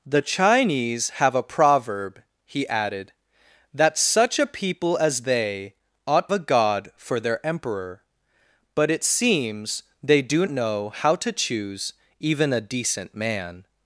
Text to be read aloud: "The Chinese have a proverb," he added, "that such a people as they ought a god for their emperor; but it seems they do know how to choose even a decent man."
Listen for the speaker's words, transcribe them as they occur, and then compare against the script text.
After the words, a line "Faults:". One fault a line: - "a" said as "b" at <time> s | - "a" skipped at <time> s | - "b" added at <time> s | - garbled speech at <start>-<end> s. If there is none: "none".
"The Chinese have a proverb," he added, "that such a people as they ought a god for their emperor; but it seems they do know how to choose even a decent man."
Faults:
none